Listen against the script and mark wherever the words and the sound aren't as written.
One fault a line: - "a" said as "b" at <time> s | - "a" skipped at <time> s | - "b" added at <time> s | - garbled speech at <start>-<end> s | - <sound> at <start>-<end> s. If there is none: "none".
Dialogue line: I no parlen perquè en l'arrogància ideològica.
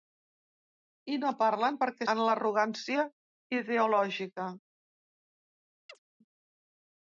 - chirp at 5.9-6.0 s